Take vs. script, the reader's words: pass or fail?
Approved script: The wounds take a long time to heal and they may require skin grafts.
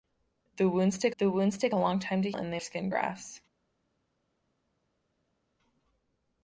fail